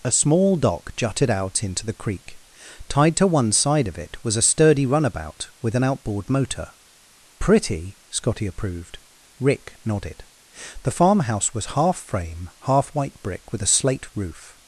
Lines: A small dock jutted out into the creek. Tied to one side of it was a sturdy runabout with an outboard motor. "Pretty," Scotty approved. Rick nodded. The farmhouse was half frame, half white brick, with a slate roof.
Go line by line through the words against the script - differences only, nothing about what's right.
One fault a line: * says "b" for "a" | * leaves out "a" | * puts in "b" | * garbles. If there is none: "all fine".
all fine